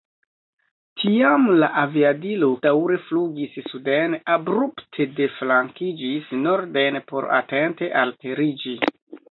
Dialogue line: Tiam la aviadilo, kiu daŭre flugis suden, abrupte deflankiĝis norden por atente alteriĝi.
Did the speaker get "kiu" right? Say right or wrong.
wrong